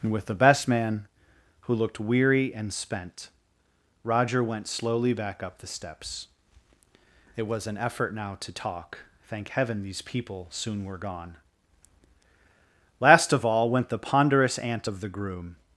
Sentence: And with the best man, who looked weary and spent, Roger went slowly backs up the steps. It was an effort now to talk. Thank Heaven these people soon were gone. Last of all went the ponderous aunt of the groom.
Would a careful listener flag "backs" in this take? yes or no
yes